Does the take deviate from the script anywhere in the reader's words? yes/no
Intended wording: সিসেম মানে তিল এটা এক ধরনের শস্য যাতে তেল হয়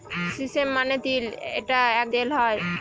yes